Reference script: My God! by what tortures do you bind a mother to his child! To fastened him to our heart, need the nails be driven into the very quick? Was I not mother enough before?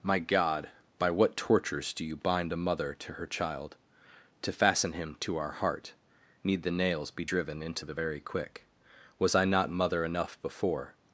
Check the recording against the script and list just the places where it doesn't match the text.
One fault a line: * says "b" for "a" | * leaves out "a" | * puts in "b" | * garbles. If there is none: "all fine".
* says "her" for "his"
* says "fasten" for "fastened"